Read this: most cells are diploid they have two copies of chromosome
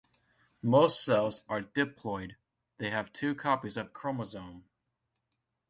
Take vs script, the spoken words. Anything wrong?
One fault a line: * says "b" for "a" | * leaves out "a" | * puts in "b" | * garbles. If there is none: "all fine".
all fine